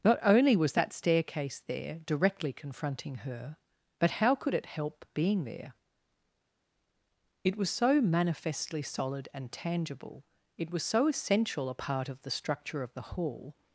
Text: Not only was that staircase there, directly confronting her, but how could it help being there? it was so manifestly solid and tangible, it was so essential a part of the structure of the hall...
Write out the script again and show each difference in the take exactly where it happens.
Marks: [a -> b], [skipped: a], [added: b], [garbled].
Not only was that staircase there, directly confronting her, but how could it help being there? it was so manifestly solid and tangible, it was so essential a part of the structure of the hall...